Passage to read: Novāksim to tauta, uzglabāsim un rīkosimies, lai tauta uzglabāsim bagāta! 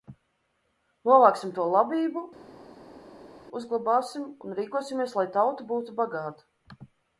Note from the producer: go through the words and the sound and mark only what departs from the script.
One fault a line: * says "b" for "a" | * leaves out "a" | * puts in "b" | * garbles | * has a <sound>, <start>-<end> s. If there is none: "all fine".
* says "labību" for "tauta"
* says "būtu" for "uzglabāsim"